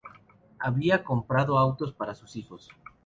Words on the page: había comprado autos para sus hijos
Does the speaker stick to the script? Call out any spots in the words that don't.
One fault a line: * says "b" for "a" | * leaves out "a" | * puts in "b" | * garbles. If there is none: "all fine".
all fine